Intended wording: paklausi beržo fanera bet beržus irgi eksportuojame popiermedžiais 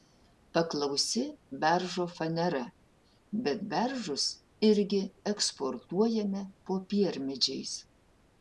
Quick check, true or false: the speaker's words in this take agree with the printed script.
true